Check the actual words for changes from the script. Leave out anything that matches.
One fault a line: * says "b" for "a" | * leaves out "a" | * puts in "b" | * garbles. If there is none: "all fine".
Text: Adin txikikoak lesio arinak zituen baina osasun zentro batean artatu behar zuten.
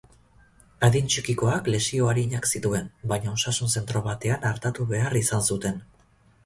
* puts in "izan"